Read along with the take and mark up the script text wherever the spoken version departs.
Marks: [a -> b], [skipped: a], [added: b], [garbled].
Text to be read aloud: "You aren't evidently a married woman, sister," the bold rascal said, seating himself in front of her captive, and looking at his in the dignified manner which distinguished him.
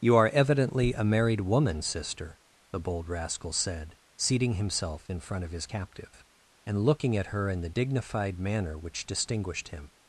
"You [aren't -> are] evidently a married woman, sister," the bold rascal said, seating himself in front of [her -> his] captive, and looking at [his -> her] in the dignified manner which distinguished him.